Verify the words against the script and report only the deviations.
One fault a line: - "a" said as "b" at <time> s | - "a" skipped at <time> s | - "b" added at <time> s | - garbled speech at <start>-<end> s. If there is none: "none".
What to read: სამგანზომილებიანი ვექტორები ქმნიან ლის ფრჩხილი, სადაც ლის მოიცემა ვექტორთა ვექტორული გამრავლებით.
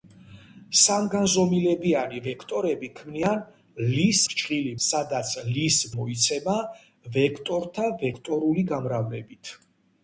none